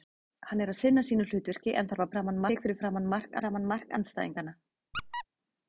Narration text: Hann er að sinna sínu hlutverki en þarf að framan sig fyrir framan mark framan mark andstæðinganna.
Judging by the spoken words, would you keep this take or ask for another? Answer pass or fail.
pass